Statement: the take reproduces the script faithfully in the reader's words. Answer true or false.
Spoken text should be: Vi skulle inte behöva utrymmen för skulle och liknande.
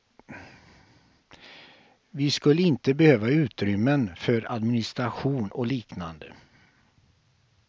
false